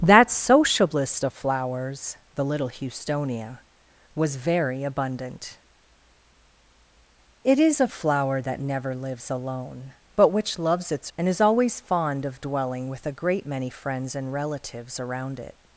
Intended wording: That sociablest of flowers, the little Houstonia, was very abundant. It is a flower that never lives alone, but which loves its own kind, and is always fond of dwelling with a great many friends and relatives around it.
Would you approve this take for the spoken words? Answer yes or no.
no